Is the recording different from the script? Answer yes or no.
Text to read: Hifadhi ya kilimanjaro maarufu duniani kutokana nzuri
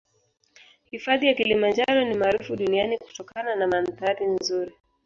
yes